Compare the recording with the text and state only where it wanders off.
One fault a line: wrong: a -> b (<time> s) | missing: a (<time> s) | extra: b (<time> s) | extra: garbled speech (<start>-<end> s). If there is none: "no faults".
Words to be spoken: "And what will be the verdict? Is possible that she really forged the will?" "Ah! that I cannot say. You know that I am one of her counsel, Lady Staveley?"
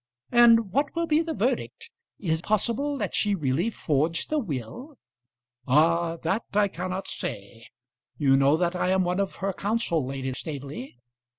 no faults